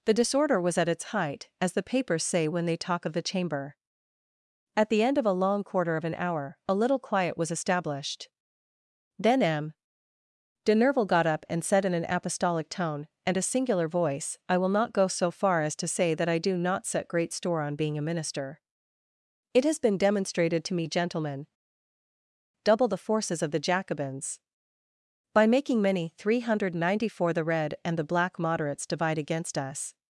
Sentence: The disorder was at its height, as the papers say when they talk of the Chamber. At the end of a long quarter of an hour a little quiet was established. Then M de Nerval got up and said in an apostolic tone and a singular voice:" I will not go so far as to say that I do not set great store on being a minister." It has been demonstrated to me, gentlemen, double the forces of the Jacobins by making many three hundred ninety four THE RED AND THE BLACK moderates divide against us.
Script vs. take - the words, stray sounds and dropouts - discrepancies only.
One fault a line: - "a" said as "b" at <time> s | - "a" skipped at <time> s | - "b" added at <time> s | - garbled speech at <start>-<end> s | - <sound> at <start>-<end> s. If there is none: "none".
none